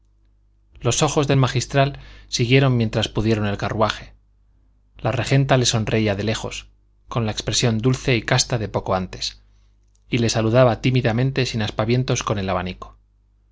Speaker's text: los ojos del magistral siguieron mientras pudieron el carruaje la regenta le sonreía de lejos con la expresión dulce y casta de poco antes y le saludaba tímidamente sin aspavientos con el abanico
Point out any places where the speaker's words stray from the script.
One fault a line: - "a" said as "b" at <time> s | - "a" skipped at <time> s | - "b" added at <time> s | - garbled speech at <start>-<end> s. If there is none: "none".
none